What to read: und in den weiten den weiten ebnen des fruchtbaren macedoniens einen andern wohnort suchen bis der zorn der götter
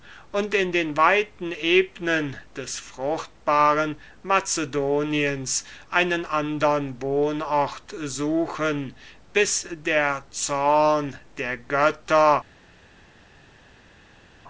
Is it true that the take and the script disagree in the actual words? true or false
true